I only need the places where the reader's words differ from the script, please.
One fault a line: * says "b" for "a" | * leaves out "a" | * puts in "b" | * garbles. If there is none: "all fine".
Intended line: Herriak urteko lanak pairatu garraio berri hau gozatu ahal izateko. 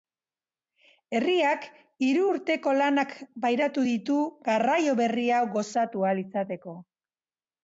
* puts in "hiru"
* puts in "ditu"